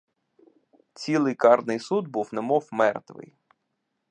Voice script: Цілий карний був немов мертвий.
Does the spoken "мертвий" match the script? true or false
true